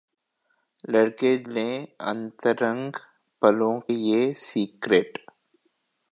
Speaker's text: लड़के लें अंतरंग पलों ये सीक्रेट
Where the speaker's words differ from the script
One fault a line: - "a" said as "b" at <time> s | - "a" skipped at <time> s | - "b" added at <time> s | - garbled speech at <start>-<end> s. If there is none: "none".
none